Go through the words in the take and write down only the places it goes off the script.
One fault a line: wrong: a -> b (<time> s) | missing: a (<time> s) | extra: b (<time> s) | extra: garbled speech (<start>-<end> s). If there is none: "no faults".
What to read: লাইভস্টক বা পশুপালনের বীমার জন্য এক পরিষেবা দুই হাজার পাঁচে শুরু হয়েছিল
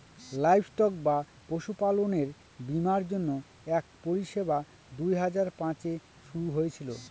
no faults